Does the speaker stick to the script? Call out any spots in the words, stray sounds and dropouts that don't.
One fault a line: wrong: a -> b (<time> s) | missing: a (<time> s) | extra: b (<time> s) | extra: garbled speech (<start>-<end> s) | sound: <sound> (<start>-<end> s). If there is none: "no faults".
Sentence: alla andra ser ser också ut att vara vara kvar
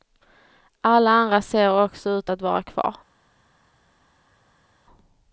missing: ser (1.8 s)
missing: vara (2.6 s)